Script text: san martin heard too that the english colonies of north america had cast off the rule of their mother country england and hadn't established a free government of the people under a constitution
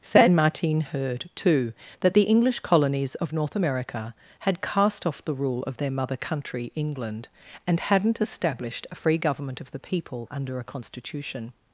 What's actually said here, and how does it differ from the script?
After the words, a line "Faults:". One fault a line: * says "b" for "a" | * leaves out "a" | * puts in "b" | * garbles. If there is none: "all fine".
san martin heard too that the english colonies of north america had cast off the rule of their mother country england and hadn't established a free government of the people under a constitution
Faults:
all fine